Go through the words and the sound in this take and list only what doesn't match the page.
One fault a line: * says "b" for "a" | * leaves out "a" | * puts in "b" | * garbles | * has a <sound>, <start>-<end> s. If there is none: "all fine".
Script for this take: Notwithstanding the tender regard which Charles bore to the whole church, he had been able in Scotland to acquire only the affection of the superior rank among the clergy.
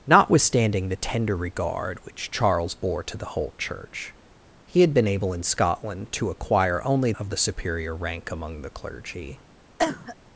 * leaves out "the affection"
* has a cough, 9.8-10.2 s